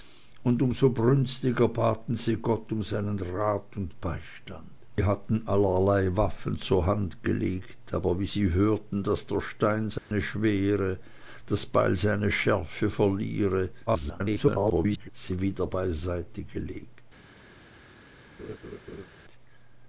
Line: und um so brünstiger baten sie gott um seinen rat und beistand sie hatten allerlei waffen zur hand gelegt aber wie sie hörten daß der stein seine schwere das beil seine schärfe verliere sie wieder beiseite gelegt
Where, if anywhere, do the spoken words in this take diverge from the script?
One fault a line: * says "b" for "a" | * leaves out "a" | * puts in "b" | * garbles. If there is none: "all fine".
* garbles